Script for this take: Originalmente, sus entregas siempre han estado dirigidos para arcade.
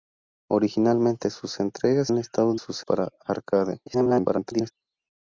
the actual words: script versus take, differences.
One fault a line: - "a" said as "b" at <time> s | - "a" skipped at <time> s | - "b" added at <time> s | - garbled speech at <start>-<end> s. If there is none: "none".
- "siempre" skipped at 2.1 s
- "dirigidos" said as "sus" at 2.5 s
- garbled speech at 3.9-4.7 s